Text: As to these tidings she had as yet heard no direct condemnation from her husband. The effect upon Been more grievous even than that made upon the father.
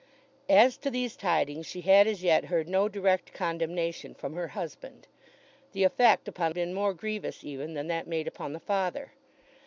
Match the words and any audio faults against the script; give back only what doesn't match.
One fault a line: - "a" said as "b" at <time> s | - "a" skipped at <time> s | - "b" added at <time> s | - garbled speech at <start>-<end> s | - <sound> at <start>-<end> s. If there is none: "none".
none